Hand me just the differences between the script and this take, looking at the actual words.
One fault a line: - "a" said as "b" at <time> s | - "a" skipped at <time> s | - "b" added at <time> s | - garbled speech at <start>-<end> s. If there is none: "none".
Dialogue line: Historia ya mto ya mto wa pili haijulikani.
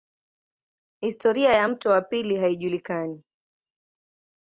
- "ya mto" skipped at 1.9 s